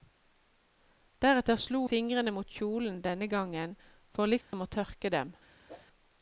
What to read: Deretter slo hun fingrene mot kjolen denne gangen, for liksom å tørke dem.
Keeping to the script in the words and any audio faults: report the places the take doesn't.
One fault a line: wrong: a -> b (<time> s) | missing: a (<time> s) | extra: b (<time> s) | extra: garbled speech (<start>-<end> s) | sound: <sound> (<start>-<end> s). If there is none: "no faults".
missing: hun (1.8 s)
sound: dropout (4.4-4.5 s)
sound: whoosh (5.7-5.9 s)